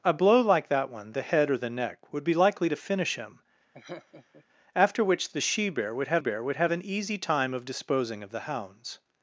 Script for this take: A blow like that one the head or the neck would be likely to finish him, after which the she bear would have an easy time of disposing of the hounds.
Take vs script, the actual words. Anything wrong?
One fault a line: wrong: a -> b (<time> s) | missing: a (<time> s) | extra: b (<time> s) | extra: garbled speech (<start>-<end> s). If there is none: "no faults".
extra: bear would have (6.2 s)